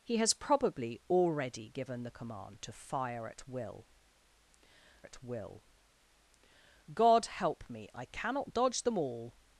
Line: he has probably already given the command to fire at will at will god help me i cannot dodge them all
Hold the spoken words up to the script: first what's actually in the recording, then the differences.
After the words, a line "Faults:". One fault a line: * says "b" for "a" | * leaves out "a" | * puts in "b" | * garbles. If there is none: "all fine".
he has probably already given the command to fire at will at will god help me i cannot dodge them all
Faults:
all fine